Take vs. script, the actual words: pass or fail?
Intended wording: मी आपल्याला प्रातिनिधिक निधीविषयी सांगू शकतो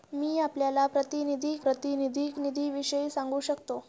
fail